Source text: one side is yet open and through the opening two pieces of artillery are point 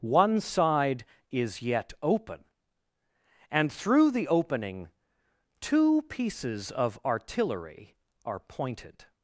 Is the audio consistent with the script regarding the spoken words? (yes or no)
no